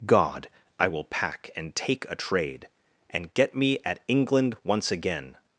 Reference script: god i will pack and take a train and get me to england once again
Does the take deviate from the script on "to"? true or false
true